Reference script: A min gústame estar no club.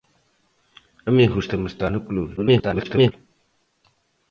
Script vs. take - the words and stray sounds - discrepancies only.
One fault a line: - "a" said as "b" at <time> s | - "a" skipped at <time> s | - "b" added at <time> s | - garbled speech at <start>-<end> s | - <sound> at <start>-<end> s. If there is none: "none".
- garbled speech at 2.4-3.1 s